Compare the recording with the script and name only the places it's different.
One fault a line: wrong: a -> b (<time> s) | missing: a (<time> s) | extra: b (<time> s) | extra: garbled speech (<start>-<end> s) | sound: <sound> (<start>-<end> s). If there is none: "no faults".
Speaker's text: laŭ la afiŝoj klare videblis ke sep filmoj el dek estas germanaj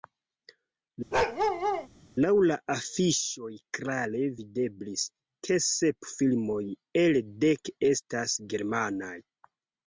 sound: bark (1.1-1.9 s)